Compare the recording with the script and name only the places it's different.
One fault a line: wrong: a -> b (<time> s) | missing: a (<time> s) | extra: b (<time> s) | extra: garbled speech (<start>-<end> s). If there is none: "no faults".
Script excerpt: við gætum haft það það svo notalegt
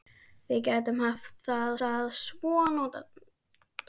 no faults